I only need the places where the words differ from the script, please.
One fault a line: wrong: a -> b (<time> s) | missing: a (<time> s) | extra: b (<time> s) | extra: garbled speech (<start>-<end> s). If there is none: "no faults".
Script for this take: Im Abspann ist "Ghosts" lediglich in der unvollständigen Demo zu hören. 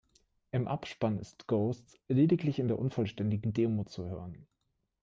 no faults